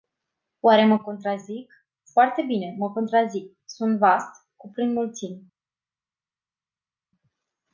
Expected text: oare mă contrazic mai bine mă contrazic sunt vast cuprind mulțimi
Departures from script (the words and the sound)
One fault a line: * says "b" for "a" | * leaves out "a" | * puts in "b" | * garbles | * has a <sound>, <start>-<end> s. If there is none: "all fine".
* says "foarte" for "mai"